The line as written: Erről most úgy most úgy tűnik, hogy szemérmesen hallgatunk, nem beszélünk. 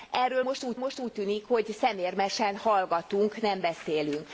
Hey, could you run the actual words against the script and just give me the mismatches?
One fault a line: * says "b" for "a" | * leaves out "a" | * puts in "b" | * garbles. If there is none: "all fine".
all fine